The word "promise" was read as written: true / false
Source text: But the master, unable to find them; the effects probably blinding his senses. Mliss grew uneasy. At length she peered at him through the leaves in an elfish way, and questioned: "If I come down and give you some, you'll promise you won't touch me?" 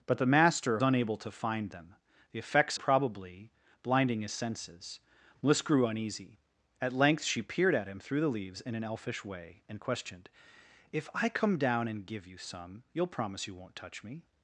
true